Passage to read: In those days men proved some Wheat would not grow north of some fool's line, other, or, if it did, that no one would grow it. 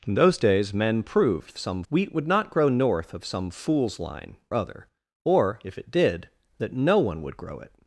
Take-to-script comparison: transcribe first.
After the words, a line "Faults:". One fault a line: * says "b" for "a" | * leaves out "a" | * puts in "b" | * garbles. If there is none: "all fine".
In those days men proved some Wheat would not grow north of some fool's line, other, or, if it did, that no one would grow it.
Faults:
all fine